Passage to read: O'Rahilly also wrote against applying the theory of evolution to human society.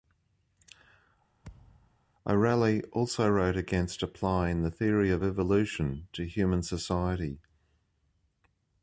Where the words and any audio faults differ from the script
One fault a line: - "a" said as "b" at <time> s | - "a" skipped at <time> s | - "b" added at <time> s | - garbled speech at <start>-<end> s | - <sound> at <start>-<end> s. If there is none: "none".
- thud at 1.4-2.0 s